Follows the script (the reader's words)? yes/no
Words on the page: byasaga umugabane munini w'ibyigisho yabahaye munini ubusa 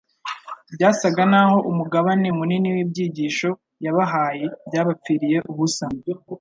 no